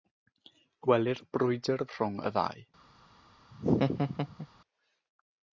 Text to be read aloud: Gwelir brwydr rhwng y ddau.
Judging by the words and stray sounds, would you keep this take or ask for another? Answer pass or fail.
fail